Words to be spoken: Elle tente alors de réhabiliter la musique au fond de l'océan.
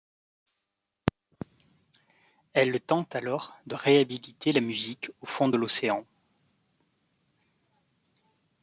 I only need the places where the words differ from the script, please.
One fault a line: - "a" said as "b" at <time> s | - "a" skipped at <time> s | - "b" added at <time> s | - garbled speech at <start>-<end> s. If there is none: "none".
none